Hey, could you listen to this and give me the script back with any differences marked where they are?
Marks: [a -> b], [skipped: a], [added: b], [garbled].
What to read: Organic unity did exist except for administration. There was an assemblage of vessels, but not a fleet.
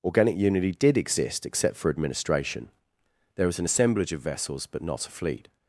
Organic unity did exist except for administration. There was an assemblage of vessels, but not a fleet.